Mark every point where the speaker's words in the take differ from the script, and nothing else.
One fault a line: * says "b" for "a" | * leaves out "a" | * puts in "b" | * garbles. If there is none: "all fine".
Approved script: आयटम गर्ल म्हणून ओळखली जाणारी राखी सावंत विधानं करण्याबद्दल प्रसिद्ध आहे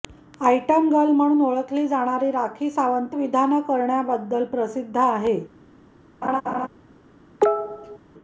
all fine